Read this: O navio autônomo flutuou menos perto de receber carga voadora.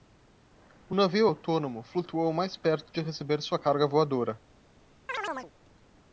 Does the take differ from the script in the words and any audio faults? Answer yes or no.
yes